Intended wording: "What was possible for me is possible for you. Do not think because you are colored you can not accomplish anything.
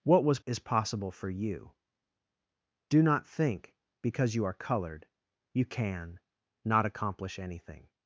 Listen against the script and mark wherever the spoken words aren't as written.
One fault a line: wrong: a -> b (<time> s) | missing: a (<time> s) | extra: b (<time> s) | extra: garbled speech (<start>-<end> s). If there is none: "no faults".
missing: possible for me (0.4 s)